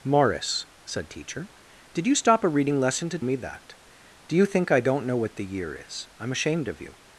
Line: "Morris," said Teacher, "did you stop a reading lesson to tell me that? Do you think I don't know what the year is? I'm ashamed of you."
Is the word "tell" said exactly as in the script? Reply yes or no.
no